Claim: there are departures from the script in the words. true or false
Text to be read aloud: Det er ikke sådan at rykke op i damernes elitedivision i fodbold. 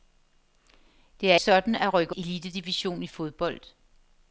true